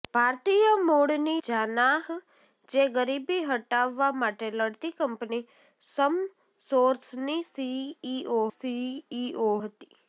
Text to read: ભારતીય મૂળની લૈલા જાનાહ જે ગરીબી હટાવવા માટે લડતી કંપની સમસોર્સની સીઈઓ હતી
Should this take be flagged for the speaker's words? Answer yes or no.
yes